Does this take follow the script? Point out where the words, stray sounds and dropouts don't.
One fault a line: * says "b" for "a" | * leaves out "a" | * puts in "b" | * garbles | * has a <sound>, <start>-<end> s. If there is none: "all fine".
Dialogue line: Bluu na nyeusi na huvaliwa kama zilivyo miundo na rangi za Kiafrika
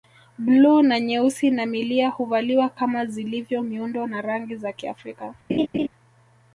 * puts in "milia"
* has a laugh, 5.5-5.9 s